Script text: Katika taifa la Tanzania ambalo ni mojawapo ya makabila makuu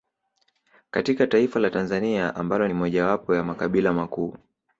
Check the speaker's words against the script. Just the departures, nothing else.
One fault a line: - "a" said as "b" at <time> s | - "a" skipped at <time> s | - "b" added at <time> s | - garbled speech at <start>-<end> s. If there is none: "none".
none